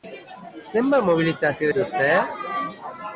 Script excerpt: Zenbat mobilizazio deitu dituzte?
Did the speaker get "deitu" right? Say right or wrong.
wrong